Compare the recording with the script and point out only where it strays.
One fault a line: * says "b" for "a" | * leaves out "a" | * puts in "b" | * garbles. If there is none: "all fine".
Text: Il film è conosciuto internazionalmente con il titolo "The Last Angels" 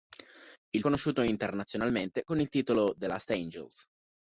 * leaves out "film è"